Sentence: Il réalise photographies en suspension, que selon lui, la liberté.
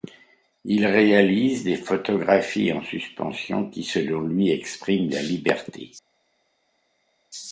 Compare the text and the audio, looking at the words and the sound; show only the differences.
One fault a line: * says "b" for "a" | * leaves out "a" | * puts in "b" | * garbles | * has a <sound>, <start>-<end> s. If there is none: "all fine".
* puts in "des"
* says "qui" for "que"
* puts in "expriment"